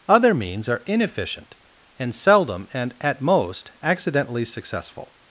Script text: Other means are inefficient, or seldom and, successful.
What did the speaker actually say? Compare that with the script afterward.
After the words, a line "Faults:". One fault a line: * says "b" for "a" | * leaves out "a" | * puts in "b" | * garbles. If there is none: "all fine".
Other means are inefficient, and seldom and, at most, accidentally successful.
Faults:
* says "and" for "or"
* puts in "at most accidentally"